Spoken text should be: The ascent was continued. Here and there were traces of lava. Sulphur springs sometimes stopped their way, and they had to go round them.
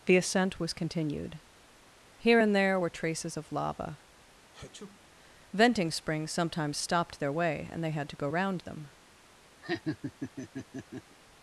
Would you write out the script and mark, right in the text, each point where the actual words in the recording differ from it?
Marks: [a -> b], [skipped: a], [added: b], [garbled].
The ascent was continued. Here and there were traces of lava. [Sulphur -> Venting] springs sometimes stopped their way, and they had to go round them.